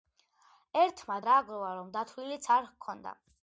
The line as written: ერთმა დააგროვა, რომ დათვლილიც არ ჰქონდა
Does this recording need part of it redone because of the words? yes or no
no